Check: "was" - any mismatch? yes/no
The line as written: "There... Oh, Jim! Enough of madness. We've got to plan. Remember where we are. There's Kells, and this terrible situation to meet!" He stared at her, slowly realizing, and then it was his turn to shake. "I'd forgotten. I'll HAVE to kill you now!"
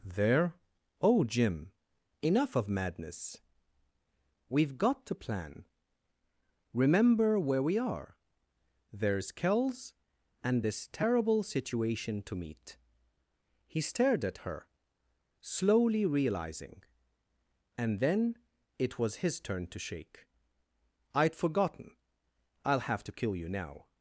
no